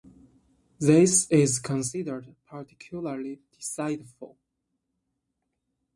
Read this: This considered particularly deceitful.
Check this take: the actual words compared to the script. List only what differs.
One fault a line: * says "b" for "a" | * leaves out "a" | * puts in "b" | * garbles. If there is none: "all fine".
* puts in "is"